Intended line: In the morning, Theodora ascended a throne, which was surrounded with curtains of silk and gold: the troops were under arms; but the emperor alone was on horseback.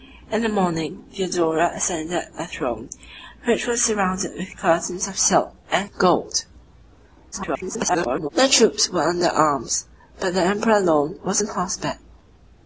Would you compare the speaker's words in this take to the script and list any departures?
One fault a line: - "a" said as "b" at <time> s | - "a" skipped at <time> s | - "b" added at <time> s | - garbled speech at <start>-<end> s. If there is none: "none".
- garbled speech at 7.3-8.3 s